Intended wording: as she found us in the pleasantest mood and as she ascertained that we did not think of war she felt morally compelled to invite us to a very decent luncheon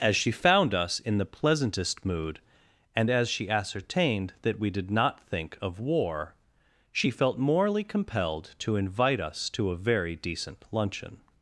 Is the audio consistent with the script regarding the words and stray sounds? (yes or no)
yes